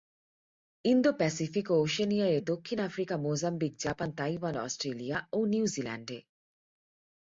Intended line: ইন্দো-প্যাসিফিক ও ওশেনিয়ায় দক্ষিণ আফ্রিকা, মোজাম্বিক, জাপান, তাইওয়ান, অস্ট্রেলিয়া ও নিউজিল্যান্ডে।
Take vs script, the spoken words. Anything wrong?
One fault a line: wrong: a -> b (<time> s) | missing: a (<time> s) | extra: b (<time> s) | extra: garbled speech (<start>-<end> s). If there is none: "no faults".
no faults